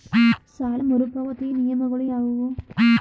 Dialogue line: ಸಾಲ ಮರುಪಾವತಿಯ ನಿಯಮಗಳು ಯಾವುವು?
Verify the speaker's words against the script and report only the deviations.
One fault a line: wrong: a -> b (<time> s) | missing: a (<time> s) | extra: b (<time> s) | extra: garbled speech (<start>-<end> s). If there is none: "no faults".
no faults